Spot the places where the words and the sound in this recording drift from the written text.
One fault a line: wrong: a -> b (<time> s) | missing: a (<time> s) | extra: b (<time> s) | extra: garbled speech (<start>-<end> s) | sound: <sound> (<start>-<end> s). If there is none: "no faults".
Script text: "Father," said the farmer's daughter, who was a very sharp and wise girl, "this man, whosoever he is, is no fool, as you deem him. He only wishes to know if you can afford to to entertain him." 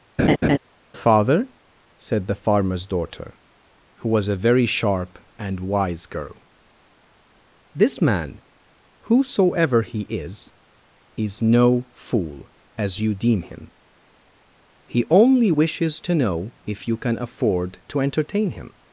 sound: laugh (0.2-0.6 s)
missing: to (18.0 s)